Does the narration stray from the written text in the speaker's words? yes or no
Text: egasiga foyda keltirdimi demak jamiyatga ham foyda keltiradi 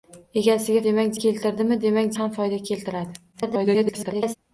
yes